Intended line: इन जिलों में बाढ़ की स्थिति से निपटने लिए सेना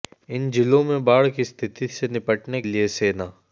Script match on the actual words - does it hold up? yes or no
yes